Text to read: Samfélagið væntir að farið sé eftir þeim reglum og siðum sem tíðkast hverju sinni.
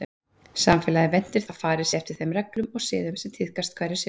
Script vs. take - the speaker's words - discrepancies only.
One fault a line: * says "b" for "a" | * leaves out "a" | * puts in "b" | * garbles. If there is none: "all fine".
all fine